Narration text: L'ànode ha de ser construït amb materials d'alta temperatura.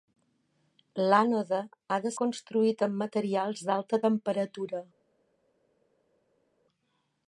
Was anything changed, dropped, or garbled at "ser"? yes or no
yes